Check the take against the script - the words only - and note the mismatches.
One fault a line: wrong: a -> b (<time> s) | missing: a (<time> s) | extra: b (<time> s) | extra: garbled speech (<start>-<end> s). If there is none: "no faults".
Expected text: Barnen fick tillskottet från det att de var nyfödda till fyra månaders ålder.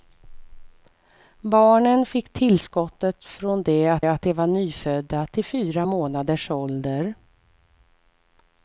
extra: att (4.0 s)